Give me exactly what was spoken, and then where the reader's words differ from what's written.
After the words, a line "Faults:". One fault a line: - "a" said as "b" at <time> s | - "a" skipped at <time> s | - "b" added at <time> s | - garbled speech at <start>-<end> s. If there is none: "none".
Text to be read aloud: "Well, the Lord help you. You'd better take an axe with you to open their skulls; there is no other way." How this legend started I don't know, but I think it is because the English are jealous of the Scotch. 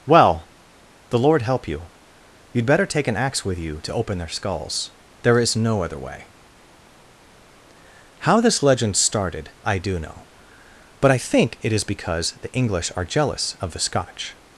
"Well, the Lord help you. You'd better take an axe with you to open their skulls; there is no other way." How this legend started I do know, but I think it is because the English are jealous of the Scotch.
Faults:
- "don't" said as "do" at 9.8 s